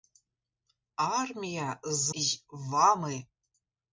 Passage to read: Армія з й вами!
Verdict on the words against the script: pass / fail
pass